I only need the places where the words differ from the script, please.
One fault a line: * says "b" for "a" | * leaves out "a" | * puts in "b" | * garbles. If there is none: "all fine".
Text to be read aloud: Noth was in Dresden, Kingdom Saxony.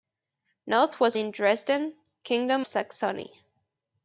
all fine